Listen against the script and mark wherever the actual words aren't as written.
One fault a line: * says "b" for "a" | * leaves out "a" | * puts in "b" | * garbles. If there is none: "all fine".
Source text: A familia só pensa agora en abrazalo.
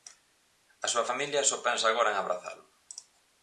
* puts in "súa"